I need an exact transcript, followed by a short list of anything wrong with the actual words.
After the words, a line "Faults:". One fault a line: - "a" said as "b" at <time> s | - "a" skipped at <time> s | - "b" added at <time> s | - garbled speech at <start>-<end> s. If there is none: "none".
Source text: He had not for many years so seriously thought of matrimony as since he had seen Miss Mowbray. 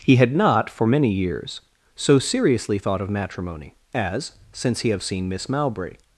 He had not for many years so seriously thought of matrimony as since he have seen Miss Mowbray.
Faults:
- "had" said as "have" at 4.9 s